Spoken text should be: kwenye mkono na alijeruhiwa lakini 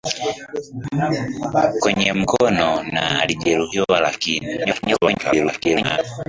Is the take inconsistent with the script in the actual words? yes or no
yes